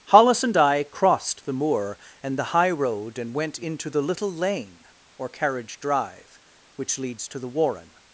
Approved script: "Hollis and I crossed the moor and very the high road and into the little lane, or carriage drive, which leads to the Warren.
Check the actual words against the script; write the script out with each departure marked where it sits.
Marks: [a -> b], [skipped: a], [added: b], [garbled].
"Hollis and I crossed the moor and [skipped: very] the high road and [added: went] into the little lane, or carriage drive, which leads to the Warren.